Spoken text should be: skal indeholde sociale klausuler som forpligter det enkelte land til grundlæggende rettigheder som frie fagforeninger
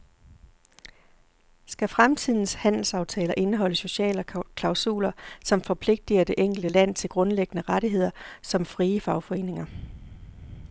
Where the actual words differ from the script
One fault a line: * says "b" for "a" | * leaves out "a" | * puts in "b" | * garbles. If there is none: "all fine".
* puts in "fremtidens handelsaftaler"